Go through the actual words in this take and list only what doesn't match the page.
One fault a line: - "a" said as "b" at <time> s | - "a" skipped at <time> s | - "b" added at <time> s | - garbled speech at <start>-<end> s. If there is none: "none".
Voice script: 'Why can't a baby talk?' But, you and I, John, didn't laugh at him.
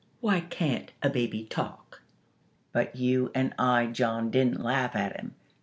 none